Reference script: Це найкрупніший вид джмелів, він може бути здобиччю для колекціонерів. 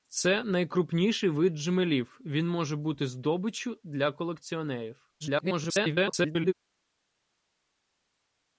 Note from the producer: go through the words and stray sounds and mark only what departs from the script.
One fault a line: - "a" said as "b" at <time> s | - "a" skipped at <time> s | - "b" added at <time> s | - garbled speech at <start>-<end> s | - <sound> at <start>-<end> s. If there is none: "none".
- garbled speech at 5.2-6.5 s